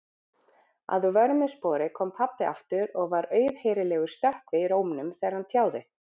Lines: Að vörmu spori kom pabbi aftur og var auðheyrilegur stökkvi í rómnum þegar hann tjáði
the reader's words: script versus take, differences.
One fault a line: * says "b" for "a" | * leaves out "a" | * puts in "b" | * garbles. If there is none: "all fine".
all fine